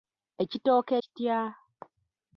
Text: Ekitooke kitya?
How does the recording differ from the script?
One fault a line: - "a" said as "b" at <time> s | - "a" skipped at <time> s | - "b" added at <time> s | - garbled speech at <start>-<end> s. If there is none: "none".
none